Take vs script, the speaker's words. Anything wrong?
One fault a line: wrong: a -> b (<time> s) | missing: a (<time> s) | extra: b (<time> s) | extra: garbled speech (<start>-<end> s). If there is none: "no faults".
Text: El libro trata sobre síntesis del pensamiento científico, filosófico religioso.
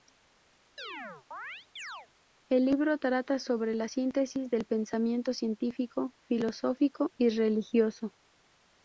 extra: la (3.7 s)
extra: y (7.2 s)